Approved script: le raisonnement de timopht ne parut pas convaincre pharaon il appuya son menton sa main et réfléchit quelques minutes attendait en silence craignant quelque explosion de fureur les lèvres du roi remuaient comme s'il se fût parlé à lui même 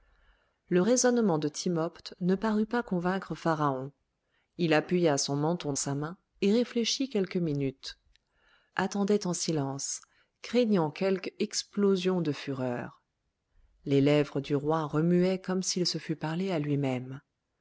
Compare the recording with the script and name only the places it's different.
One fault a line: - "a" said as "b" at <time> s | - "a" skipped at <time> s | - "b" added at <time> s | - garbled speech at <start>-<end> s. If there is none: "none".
none